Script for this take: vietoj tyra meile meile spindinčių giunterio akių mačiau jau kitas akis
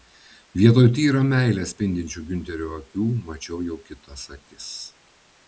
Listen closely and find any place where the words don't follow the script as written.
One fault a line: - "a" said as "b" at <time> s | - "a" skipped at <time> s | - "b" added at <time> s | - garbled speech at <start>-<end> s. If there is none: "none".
- "meile" skipped at 1.6 s